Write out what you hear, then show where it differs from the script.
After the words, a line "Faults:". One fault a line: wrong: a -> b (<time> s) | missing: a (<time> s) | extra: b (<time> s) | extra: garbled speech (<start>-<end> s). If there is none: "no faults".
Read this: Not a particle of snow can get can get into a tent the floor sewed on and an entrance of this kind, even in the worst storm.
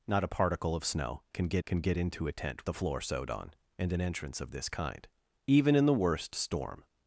Not a particle of snow can get can get into a tent the floor sewed on and an entrance of this kind, even in the worst storm.
Faults:
no faults